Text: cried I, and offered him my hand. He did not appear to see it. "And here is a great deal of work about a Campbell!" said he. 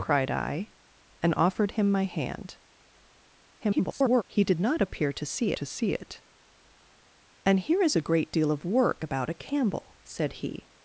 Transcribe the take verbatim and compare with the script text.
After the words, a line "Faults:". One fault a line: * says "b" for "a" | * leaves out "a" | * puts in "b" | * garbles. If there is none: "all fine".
cried I, and offered him my hand. [garbled] He did not appear to see to see it. "And here is a great deal of work about a Campbell!" said he.
Faults:
* garbles
* puts in "to see"